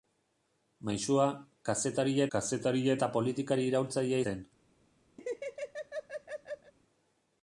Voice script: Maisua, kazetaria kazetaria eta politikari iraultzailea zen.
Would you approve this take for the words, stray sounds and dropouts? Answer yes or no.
no